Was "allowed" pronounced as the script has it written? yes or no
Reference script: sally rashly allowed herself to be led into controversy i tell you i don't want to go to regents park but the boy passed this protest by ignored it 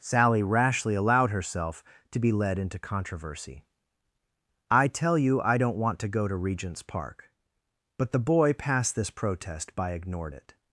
yes